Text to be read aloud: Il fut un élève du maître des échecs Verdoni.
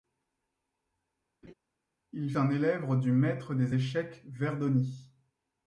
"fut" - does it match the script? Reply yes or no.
no